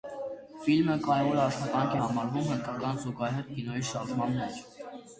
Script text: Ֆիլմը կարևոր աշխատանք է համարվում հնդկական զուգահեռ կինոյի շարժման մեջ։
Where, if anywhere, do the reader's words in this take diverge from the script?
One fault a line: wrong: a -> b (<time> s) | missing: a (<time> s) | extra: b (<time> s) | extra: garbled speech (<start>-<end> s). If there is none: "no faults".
no faults